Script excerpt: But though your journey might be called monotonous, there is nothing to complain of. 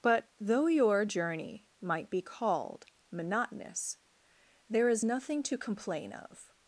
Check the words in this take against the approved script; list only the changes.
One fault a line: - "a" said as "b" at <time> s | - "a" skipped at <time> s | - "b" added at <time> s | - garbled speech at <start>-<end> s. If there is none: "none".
none